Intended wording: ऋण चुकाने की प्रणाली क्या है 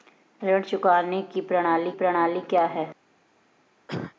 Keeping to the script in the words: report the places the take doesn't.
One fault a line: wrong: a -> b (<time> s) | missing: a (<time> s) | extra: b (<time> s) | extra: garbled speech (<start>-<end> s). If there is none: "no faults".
extra: प्रणाली (1.9 s)